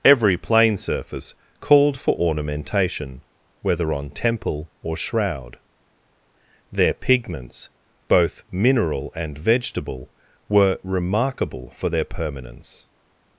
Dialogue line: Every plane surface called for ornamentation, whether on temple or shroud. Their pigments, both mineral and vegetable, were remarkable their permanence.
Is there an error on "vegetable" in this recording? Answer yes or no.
no